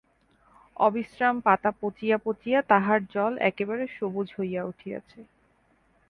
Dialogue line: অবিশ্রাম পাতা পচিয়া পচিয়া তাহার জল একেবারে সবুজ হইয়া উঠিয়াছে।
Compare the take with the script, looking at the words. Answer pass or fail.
pass